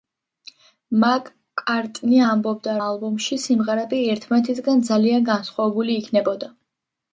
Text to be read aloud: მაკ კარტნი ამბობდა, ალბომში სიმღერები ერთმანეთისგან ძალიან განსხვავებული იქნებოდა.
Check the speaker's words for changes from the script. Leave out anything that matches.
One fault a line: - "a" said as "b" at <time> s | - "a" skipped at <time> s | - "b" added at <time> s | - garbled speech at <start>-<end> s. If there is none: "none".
none